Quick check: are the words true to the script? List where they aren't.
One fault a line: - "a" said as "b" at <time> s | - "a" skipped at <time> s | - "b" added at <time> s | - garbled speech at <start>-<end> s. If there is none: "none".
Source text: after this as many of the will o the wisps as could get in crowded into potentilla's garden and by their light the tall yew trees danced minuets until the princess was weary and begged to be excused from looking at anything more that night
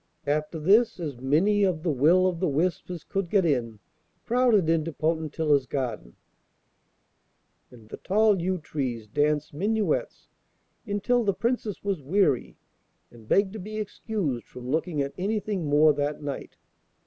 - "by their light" skipped at 7.8 s